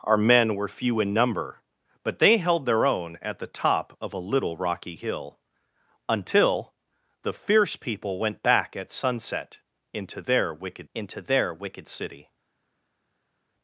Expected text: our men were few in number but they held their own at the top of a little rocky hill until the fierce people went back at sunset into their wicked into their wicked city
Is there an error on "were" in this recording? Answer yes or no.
no